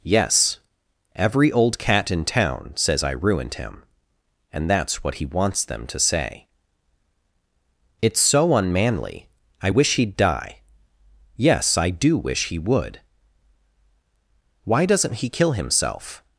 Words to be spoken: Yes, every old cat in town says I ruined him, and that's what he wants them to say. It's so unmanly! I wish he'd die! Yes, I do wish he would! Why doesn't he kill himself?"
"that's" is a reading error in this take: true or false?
false